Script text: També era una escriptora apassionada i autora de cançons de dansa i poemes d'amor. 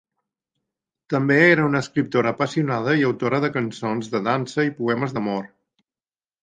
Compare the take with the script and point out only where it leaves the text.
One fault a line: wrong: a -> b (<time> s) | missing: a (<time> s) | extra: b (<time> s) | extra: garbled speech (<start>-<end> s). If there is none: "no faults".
no faults